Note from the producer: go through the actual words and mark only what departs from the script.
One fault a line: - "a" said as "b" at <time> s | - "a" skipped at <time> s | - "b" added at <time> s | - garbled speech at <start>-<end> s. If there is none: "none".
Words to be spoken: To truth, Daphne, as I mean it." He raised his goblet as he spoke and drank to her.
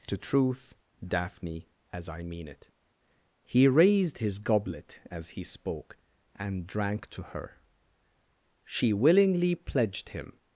- "She willingly pledged him" added at 8.7 s